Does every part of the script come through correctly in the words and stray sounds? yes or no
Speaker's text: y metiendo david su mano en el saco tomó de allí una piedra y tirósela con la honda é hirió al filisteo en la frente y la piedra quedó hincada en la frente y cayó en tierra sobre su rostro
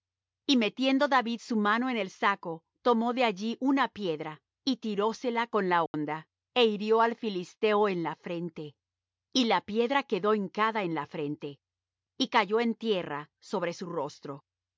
no